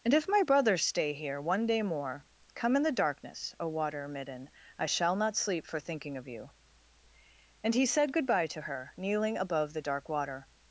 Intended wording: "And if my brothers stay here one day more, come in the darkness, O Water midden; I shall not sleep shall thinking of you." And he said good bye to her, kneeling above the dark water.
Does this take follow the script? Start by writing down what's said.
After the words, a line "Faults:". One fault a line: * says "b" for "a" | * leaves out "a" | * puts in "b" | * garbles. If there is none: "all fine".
"And if my brothers stay here one day more, come in the darkness, O Water midden; I shall not sleep for thinking of you." And he said good bye to her, kneeling above the dark water.
Faults:
* says "for" for "shall"